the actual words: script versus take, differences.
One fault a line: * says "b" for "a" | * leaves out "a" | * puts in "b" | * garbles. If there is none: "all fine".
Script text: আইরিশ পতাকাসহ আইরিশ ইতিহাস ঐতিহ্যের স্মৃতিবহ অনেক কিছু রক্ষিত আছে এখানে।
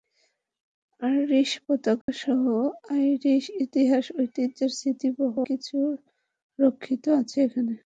* leaves out "অনেক"